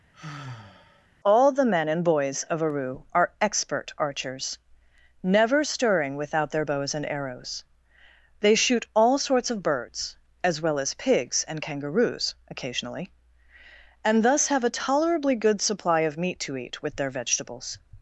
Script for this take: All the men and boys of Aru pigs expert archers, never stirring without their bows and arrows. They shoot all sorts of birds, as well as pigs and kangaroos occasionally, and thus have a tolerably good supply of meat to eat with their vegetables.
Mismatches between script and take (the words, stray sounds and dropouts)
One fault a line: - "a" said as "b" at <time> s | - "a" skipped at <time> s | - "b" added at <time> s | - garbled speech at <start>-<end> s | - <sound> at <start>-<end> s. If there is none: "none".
- sigh at 0.1-1.1 s
- "pigs" said as "are" at 3.1 s